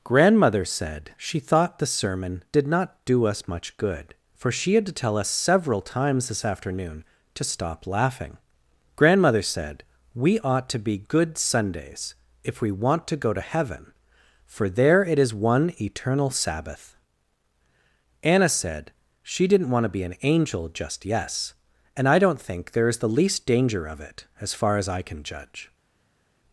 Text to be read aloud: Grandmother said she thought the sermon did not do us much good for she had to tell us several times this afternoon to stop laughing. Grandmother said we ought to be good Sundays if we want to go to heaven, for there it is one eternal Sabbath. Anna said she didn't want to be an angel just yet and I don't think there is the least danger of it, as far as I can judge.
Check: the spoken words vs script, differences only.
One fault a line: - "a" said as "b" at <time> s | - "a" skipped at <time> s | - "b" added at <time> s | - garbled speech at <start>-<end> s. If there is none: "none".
- "yet" said as "yes" at 21.0 s